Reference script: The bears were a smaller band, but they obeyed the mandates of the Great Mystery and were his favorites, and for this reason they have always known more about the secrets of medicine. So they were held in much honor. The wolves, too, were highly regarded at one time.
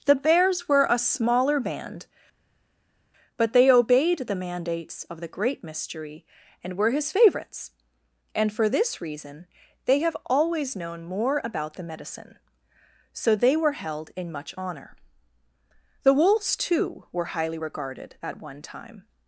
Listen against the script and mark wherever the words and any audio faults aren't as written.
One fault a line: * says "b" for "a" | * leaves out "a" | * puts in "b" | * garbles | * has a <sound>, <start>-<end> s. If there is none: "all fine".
* leaves out "secrets of"